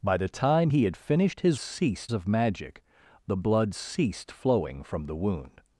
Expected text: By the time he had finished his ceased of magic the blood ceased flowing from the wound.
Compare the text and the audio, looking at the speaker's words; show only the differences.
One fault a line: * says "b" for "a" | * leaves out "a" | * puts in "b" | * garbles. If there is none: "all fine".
all fine